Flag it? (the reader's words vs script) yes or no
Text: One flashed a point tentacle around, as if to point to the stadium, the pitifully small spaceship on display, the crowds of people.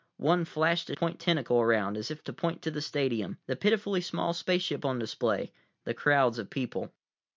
no